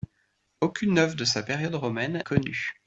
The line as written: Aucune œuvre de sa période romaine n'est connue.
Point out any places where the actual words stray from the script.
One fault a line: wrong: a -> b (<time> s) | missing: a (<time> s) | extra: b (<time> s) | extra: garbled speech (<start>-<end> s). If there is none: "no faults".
missing: n'est (2.2 s)